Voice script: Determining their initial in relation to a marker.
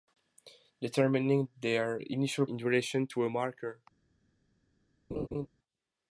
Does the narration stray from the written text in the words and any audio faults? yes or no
yes